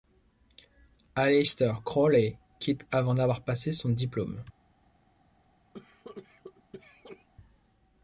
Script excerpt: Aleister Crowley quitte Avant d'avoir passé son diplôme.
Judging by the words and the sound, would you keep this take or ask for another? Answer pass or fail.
fail